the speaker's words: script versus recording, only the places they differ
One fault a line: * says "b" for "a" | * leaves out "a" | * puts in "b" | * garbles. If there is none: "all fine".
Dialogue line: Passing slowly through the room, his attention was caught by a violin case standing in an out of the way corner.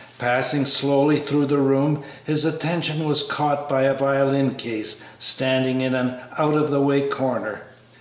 all fine